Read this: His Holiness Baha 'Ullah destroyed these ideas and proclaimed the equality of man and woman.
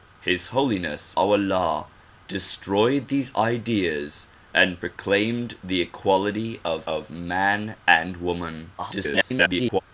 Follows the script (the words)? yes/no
no